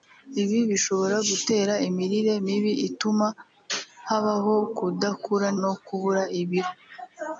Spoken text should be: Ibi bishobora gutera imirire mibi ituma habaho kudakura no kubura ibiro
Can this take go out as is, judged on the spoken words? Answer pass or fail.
pass